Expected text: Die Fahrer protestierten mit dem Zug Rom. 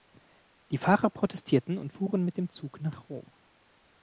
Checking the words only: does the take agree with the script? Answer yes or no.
no